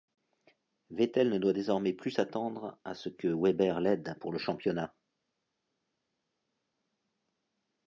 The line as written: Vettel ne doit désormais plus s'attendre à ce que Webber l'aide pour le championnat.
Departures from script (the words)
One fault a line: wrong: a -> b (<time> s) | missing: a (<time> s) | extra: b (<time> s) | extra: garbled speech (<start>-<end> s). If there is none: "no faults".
no faults